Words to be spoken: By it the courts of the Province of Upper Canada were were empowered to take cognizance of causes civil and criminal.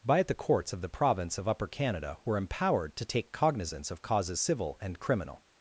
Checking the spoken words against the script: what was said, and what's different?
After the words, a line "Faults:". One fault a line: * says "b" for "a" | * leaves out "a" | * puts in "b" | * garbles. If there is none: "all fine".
By it the courts of the Province of Upper Canada were empowered to take cognizance of causes civil and criminal.
Faults:
* leaves out "were"